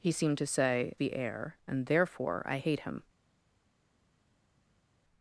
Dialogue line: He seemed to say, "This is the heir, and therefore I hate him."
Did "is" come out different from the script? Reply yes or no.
yes